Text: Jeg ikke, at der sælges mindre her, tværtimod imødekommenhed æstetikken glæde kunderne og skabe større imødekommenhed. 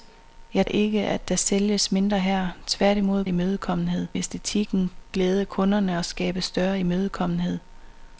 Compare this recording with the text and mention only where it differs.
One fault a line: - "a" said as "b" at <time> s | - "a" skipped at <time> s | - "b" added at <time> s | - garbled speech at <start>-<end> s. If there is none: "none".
none